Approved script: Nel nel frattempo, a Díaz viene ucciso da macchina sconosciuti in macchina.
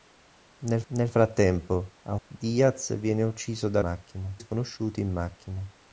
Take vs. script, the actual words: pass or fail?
pass